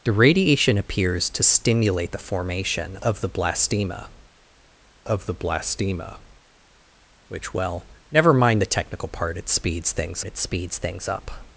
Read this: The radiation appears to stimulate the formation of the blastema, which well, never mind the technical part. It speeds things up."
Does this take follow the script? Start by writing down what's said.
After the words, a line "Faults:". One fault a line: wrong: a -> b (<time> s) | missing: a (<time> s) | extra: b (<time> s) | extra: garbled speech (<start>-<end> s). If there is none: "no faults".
The radiation appears to stimulate the formation of the blastema of the blastema, which well, never mind the technical part. It speeds things it speeds things up."
Faults:
extra: of the blastema (5.1 s)
extra: it speeds things (10.2 s)